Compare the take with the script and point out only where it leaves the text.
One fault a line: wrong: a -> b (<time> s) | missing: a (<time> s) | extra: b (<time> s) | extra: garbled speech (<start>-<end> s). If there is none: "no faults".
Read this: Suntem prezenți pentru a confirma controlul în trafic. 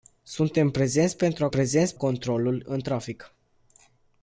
wrong: confirma -> prezenți (1.5 s)